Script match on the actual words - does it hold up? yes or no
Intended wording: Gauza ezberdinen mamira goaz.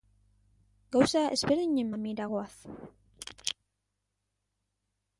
yes